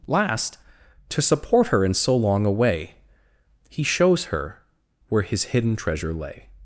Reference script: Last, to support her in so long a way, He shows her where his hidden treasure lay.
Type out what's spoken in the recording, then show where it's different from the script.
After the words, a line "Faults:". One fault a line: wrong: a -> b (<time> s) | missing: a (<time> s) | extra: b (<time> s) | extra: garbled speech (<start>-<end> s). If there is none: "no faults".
Last, to support her in so long a way, He shows her where his hidden treasure lay.
Faults:
no faults